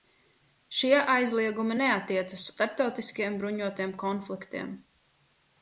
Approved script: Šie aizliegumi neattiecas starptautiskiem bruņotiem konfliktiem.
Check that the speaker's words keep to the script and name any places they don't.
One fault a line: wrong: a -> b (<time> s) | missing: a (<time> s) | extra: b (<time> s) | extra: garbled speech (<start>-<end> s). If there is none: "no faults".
no faults